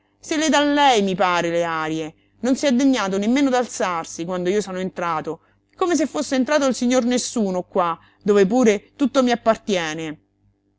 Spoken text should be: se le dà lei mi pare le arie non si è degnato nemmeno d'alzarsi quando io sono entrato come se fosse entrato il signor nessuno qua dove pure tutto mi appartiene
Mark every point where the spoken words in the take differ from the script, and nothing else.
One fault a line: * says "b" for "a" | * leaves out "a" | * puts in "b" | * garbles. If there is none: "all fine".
all fine